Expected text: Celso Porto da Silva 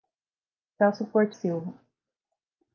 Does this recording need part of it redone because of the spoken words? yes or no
yes